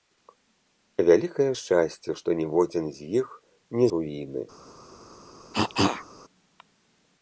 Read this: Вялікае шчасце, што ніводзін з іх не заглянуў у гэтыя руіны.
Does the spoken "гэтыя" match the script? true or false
false